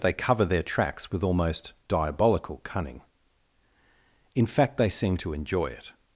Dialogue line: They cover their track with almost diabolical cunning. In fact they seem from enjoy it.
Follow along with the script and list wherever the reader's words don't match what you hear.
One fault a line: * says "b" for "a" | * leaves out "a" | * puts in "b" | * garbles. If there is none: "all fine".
* says "tracks" for "track"
* says "to" for "from"